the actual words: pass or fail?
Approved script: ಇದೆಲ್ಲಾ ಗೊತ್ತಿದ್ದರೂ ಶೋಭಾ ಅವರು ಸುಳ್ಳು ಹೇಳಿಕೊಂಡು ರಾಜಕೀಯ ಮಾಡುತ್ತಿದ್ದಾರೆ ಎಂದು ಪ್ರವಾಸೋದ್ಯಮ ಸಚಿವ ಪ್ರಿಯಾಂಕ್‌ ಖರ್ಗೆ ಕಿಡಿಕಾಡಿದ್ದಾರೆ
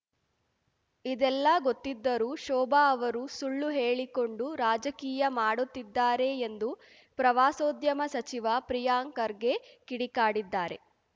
pass